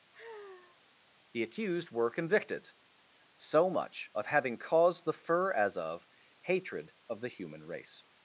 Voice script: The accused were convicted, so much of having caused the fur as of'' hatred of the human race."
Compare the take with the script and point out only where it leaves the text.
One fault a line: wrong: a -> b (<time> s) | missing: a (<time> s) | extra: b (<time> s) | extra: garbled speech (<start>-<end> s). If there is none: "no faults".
no faults